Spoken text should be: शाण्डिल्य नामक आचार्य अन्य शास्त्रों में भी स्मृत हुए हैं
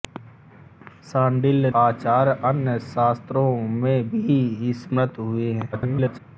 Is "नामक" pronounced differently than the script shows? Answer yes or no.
yes